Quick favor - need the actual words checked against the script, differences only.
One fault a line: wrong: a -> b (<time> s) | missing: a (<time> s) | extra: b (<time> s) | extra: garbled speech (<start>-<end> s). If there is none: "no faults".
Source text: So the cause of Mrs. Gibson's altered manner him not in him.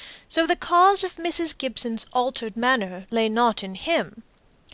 wrong: him -> lay (3.1 s)